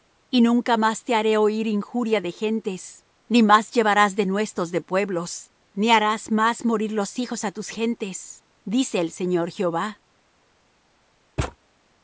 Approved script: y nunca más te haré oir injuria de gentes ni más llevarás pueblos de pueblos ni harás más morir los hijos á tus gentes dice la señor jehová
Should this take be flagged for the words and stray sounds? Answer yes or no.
yes